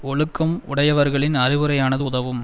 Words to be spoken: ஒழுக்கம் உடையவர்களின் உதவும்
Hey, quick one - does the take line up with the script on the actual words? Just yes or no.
no